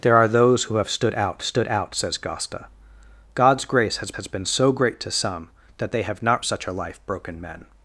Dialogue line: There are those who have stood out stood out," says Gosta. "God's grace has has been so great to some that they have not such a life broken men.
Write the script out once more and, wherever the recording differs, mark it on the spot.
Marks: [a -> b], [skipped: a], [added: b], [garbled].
There are those who have stood out stood out," says Gosta. "God's grace has has been so great to some that they have not such a life broken men.